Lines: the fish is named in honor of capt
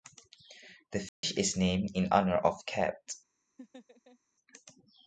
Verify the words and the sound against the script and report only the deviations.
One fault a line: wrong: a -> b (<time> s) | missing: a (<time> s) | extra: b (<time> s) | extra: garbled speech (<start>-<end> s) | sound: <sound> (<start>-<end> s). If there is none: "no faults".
sound: dropout (1.1-1.2 s)
sound: laugh (3.6-4.2 s)